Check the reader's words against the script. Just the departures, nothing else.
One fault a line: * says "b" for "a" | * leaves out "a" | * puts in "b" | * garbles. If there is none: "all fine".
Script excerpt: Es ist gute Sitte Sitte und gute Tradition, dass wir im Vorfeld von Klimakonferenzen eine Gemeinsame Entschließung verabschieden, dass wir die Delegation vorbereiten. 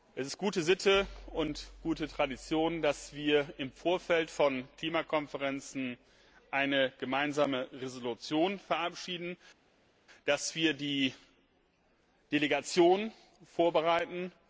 * leaves out "Sitte"